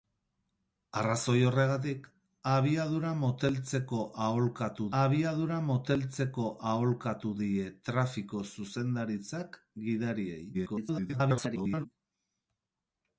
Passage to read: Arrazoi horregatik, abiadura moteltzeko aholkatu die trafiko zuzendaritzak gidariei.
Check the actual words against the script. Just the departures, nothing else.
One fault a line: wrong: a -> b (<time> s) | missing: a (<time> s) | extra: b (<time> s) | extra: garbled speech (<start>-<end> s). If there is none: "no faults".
extra: abiadura moteltzeko aholkatu (5.0 s)
extra: garbled speech (10.5-11.9 s)